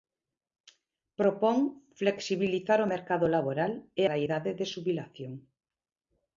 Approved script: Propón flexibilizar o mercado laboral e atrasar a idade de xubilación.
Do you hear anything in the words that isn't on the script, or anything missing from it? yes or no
yes